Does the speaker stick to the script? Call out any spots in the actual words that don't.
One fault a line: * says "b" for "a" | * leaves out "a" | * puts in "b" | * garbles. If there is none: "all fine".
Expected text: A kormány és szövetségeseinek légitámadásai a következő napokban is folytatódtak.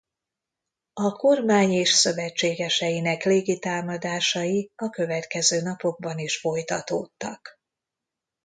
all fine